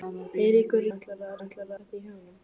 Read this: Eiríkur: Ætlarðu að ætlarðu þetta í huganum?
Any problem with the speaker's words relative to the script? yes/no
no